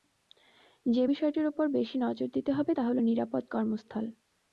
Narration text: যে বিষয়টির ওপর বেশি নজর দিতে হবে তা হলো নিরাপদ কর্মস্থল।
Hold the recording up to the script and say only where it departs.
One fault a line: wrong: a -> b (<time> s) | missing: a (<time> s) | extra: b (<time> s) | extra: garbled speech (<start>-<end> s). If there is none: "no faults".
no faults